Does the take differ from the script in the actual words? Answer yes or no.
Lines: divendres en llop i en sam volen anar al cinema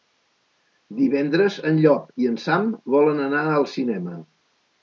no